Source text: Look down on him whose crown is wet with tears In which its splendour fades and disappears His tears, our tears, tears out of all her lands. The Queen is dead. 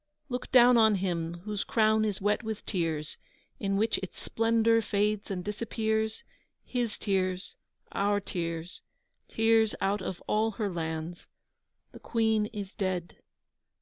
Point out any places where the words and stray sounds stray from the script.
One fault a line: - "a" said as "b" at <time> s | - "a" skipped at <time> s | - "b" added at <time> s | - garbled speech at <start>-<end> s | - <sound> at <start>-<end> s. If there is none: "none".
none